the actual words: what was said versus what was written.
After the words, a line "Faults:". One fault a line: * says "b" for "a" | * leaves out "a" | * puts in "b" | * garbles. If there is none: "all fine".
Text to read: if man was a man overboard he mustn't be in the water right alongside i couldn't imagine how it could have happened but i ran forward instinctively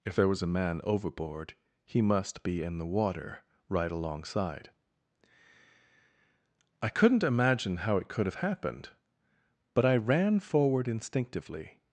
if there was a man overboard he must be in the water right alongside i couldn't imagine how it could have happened but i ran forward instinctively
Faults:
* says "there" for "man"
* says "must" for "mustn't"